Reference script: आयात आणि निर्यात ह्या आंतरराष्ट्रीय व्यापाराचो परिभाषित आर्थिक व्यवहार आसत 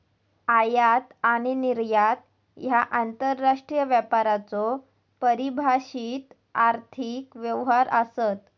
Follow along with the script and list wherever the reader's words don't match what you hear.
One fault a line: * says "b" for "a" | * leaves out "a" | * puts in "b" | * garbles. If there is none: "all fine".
all fine